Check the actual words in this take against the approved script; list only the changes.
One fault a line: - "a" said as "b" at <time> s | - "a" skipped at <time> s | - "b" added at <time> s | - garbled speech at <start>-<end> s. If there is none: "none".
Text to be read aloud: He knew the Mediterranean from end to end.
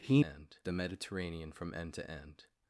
- "knew" said as "end" at 0.2 s